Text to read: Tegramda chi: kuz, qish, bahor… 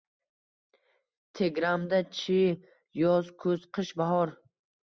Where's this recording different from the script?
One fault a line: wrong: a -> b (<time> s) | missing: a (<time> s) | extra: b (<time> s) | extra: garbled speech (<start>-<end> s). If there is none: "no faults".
extra: yoz (3.0 s)